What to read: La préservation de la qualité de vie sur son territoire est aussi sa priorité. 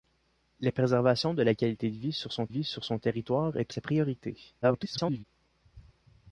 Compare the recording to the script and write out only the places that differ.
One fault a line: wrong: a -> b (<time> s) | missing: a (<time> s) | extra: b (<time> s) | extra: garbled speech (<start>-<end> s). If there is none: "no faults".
extra: vie sur son (2.5 s)
missing: aussi (3.7 s)
extra: garbled speech (4.6-5.2 s)